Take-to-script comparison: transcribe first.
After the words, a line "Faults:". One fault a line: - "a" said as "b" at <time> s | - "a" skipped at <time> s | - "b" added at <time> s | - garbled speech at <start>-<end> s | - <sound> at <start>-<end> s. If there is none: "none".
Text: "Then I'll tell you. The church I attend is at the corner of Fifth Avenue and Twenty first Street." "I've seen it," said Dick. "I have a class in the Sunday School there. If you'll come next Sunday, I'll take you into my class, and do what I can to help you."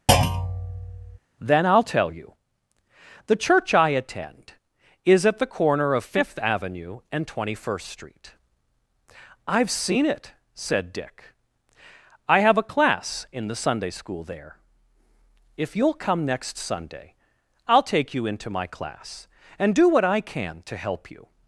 "Then I'll tell you. The church I attend is at the corner of Fifth Avenue and Twenty first Street." "I've seen it," said Dick. "I have a class in the Sunday School there. If you'll come next Sunday, I'll take you into my class, and do what I can to help you."
Faults:
- thud at 0.1-1.2 s